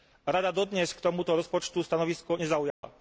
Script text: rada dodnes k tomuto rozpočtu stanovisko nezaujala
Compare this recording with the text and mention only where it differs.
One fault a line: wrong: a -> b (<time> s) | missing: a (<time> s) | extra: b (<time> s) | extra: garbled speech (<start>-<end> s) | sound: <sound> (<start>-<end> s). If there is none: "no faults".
sound: dropout (2.7-2.8 s)